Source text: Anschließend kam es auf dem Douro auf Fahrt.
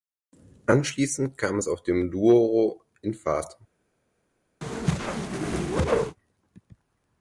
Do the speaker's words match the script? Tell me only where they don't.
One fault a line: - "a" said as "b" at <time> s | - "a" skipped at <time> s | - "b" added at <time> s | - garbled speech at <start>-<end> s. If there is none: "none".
- "auf" said as "in" at 3.0 s